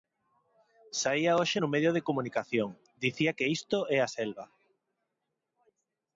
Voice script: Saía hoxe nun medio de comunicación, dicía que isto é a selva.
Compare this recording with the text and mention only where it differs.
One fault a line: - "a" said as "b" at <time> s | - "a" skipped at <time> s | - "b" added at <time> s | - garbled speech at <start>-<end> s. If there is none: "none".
none